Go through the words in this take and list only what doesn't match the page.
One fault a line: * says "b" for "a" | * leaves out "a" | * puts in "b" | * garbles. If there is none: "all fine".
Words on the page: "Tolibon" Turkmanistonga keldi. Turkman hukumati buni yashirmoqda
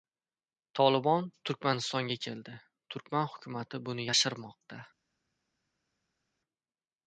all fine